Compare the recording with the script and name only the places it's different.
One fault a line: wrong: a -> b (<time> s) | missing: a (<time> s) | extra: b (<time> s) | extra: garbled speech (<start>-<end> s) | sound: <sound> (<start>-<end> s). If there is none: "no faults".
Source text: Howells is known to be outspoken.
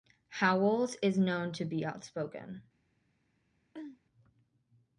sound: throat clearing (3.7-4.0 s)